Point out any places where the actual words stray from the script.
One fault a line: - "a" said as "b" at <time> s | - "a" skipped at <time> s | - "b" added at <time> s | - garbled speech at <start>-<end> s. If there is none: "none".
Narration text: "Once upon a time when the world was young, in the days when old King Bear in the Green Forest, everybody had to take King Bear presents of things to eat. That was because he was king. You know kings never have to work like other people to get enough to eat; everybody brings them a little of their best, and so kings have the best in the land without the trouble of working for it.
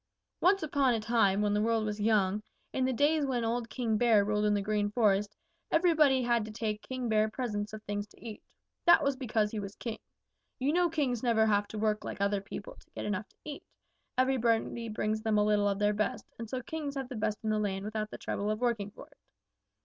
- "ruled" added at 4.2 s